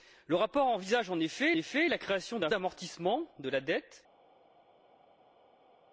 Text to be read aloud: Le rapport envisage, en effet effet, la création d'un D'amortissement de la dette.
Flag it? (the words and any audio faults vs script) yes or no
no